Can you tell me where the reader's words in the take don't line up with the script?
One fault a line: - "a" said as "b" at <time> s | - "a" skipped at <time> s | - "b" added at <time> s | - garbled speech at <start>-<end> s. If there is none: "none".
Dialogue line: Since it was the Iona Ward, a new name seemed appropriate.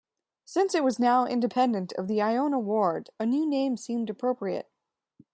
- "now independent of" added at 1.0 s